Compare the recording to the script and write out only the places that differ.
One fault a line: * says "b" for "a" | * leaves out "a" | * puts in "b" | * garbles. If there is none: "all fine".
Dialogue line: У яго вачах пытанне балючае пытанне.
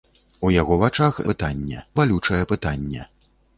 all fine